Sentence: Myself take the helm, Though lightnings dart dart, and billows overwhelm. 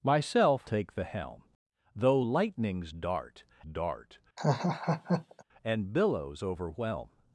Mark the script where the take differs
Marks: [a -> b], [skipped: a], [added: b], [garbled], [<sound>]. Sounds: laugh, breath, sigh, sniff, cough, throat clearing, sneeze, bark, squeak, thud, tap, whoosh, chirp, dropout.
Myself take the helm, Though lightnings dart dart, [laugh] and billows overwhelm.